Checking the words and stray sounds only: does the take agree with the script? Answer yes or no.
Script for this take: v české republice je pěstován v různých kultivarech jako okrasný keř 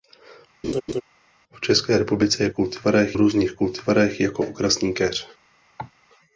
no